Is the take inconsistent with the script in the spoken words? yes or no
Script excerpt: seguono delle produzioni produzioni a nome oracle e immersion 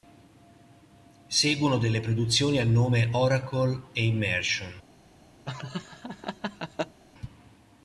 yes